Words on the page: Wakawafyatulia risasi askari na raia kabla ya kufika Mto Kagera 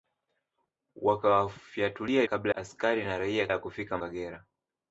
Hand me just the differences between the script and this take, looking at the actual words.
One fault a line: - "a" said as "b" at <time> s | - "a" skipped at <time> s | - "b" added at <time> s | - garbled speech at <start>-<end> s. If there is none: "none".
- "risasi" said as "kabla" at 2.2 s
- "kabla" skipped at 3.5 s
- "Mto" skipped at 4.0 s